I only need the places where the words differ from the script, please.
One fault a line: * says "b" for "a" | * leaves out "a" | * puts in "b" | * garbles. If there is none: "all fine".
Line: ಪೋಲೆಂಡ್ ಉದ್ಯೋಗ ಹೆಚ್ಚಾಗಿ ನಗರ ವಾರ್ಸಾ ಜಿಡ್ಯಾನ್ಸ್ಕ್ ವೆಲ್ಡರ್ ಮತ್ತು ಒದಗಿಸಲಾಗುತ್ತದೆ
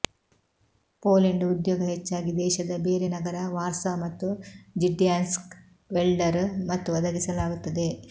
* puts in "ದೇಶದ ಬೇರೆ"
* puts in "ಮತ್ತು"